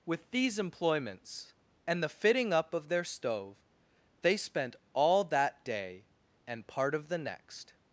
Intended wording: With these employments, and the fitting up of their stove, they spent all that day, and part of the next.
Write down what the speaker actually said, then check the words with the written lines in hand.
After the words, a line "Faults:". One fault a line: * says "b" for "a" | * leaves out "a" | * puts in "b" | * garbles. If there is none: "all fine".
With these employments, and the fitting up of their stove, they spent all that day, and part of the next.
Faults:
all fine